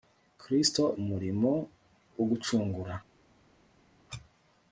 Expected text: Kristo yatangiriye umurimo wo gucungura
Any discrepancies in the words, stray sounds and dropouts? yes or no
yes